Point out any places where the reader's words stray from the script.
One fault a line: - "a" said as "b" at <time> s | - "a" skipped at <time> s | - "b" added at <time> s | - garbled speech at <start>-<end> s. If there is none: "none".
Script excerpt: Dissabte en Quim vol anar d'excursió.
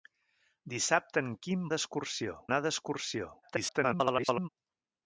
- "vol" said as "d'excursió" at 1.8 s
- garbled speech at 3.4-4.5 s